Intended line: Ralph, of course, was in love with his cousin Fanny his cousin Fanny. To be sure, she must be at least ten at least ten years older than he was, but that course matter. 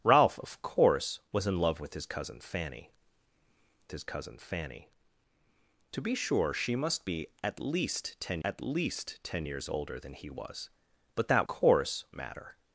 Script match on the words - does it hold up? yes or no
yes